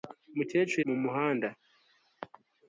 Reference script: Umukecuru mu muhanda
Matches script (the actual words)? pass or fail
pass